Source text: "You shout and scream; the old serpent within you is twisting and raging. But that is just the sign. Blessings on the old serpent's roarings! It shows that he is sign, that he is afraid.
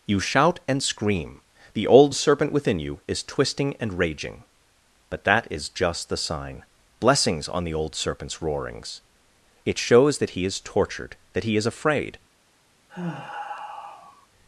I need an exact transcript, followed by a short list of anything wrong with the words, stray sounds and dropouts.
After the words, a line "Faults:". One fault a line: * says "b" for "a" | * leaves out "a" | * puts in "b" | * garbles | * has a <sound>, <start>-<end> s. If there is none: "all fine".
"You shout and scream; the old serpent within you is twisting and raging. But that is just the sign. Blessings on the old serpent's roarings! It shows that he is tortured, that he is afraid.
Faults:
* says "tortured" for "sign"
* has a sigh, 12.9-14.3 s